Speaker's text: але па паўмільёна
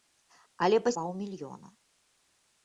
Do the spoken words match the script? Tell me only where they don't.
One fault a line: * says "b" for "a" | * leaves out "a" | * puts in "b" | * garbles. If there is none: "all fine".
all fine